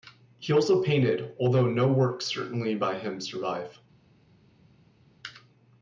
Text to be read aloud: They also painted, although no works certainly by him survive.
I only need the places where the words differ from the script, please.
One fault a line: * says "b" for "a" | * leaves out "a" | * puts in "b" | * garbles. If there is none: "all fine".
* says "He" for "They"